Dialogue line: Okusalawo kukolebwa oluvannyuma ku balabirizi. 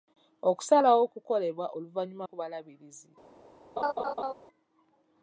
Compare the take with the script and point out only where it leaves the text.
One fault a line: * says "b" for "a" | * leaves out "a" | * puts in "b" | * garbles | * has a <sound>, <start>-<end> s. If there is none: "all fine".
* has a laugh, 3.8-4.3 s